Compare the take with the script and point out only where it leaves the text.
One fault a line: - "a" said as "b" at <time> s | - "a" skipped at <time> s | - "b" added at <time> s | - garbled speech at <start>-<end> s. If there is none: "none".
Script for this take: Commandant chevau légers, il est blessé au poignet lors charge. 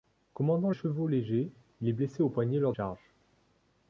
none